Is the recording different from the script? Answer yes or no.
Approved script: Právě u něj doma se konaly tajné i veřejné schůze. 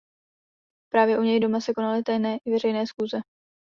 no